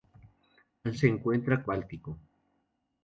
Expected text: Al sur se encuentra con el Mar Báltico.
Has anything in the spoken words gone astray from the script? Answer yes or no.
yes